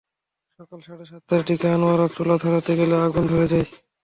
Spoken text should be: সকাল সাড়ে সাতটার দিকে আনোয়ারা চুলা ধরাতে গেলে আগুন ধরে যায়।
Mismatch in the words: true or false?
false